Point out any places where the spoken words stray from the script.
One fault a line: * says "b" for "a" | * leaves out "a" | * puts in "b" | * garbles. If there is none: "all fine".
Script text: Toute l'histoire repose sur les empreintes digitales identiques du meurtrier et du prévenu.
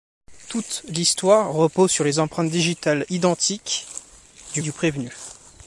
* leaves out "meurtrier"